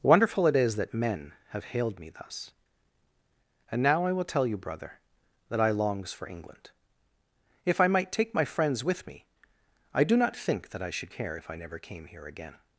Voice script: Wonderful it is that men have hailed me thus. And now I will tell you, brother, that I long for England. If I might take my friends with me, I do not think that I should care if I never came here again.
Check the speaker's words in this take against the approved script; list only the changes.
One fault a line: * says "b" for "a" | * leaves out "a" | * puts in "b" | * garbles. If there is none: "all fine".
* says "longs" for "long"